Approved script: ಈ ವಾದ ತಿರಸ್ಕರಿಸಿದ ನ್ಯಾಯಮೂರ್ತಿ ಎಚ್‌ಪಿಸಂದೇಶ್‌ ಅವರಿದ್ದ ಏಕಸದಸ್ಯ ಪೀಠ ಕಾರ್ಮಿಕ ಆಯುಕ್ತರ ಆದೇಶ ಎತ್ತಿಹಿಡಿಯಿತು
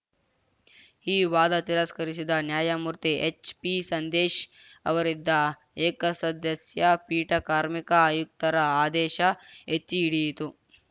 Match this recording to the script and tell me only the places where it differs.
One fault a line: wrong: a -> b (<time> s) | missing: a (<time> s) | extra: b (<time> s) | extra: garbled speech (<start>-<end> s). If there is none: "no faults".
no faults